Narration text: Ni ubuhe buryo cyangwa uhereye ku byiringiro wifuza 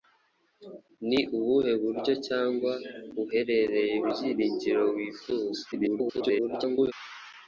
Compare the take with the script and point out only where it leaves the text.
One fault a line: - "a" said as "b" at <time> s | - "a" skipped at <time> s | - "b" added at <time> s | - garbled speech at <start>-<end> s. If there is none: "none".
- "ku" skipped at 4.0 s
- garbled speech at 5.7-6.9 s